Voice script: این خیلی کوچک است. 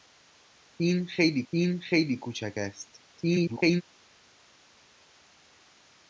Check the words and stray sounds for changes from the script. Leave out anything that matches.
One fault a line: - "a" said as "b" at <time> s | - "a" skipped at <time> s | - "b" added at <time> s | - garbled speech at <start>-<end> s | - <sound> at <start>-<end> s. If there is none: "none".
- "این خیلی" added at 1.5 s
- garbled speech at 3.1-3.8 s